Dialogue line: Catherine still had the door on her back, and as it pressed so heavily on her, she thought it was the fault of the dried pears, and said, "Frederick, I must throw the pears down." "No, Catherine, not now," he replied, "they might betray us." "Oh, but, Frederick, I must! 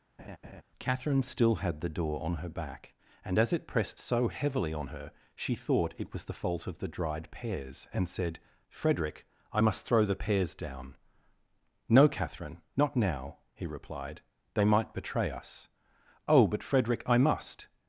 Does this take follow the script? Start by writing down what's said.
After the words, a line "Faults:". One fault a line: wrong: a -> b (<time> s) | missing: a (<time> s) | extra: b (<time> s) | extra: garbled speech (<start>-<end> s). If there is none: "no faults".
Catherine still had the door on her back, and as it pressed so heavily on her, she thought it was the fault of the dried pears, and said, "Frederick, I must throw the pears down." "No, Catherine, not now," he replied, "they might betray us." "Oh, but, Frederick, I must!
Faults:
no faults